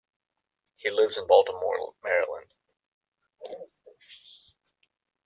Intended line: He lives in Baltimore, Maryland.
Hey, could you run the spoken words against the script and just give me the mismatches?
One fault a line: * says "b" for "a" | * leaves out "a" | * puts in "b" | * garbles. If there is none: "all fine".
all fine